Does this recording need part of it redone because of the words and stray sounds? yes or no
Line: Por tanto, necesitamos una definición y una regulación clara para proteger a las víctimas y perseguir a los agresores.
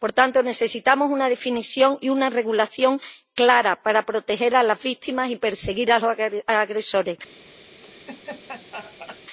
yes